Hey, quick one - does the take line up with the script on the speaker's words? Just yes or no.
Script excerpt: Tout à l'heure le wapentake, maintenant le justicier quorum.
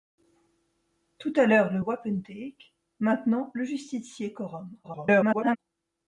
no